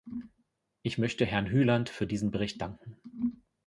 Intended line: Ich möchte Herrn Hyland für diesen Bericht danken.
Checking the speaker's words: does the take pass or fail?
pass